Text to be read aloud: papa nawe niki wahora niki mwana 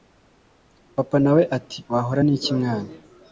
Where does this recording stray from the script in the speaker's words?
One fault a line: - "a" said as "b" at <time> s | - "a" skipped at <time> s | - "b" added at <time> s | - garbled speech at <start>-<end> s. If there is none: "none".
- "niki" said as "ati" at 1.6 s